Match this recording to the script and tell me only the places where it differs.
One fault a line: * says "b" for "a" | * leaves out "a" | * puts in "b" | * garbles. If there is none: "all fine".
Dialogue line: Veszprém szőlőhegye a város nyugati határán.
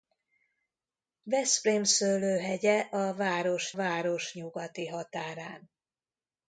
* puts in "város"